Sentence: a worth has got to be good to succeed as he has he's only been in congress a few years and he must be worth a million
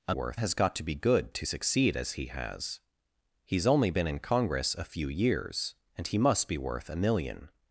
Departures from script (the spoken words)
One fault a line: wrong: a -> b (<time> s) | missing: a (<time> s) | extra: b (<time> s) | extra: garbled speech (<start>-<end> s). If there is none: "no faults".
no faults